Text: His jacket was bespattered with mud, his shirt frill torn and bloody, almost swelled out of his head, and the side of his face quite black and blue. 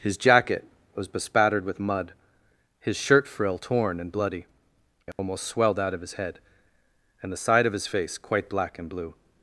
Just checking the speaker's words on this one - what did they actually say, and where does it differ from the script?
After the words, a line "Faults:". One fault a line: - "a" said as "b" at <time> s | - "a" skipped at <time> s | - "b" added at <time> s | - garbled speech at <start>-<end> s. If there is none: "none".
His jacket was bespattered with mud, his shirt frill torn and bloody, almost swelled out of his head, and the side of his face quite black and blue.
Faults:
none